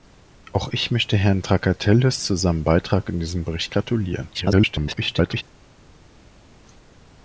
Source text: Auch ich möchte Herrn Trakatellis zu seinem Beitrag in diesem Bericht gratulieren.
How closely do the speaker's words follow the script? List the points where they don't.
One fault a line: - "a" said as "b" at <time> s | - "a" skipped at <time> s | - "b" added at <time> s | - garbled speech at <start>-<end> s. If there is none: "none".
- garbled speech at 4.3-5.4 s